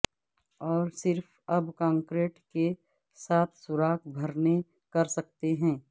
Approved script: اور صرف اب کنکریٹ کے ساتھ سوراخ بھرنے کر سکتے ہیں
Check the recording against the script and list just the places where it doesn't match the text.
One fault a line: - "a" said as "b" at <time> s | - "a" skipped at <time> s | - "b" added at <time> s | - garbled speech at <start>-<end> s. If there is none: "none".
none